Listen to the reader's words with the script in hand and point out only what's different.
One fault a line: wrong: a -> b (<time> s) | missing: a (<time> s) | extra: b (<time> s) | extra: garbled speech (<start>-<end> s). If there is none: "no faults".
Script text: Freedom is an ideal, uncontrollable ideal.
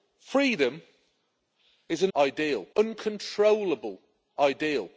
no faults